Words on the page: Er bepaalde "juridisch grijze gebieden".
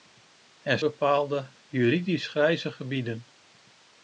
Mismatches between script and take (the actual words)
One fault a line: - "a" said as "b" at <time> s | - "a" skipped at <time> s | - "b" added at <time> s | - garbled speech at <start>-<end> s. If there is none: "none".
none